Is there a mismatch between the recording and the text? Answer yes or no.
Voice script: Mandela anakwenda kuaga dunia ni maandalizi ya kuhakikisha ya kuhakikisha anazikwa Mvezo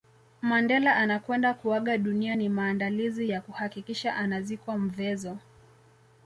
yes